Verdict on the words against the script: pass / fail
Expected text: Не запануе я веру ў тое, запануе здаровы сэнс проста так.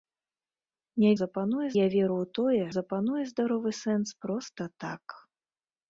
pass